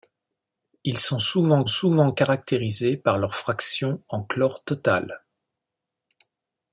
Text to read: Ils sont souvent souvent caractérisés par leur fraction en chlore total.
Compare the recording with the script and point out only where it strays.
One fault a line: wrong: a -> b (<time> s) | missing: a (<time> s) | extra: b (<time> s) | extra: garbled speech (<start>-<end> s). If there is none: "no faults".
no faults